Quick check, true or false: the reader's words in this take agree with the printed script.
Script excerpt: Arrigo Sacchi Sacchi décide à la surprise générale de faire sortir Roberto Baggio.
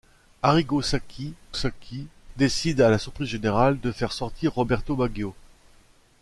true